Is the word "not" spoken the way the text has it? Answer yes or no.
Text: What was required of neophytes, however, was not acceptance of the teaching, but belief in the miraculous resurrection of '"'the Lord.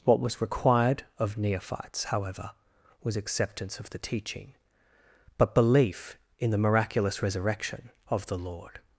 no